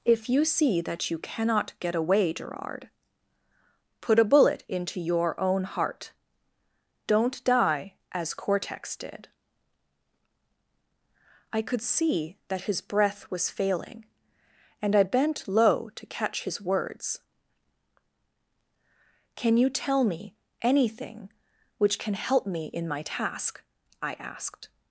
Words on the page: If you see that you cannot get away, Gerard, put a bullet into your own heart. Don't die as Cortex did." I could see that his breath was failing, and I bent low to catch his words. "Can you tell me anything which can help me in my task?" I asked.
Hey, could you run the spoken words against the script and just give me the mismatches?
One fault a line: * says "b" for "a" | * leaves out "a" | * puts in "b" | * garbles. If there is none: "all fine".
all fine